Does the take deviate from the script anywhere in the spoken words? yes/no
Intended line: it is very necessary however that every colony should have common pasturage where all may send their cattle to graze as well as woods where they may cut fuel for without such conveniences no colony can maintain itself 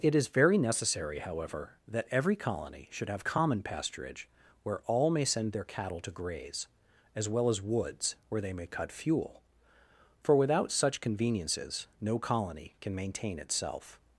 no